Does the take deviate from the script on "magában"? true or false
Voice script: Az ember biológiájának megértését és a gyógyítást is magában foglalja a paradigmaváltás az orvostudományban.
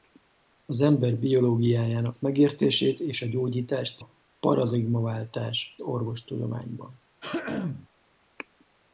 true